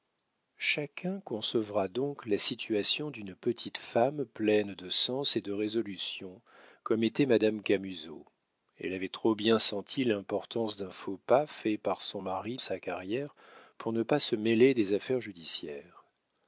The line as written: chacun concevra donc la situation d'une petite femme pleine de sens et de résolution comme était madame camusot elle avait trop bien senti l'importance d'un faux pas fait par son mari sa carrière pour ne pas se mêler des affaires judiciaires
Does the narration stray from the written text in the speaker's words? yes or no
no